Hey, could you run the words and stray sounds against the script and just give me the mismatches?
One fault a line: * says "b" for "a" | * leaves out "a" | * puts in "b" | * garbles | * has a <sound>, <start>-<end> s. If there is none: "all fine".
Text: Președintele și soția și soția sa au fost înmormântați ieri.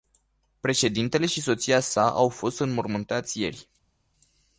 * leaves out "și soția"